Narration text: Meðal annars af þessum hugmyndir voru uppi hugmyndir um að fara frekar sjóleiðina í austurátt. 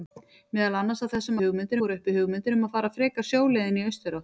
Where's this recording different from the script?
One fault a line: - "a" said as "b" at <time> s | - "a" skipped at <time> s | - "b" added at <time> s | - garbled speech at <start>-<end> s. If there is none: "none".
none